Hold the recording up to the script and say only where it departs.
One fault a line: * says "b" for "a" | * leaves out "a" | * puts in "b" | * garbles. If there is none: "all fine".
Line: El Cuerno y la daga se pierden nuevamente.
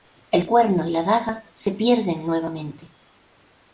all fine